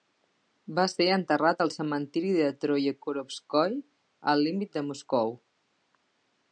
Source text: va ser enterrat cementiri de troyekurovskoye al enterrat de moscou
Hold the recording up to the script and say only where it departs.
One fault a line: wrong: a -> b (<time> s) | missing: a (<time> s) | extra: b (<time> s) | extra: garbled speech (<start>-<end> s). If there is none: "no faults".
extra: al (1.6 s)
wrong: enterrat -> límit (4.5 s)